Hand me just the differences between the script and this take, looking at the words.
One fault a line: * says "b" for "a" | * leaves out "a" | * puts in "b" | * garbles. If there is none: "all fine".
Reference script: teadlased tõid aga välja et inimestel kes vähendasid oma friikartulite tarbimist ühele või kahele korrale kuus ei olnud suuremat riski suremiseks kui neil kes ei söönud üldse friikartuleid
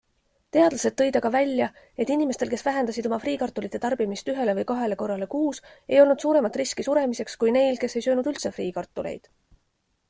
all fine